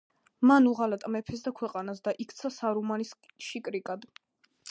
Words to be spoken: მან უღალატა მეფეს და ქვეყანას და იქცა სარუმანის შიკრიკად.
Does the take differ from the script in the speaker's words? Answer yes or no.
no